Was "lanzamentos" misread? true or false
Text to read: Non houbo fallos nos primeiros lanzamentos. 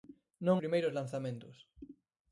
false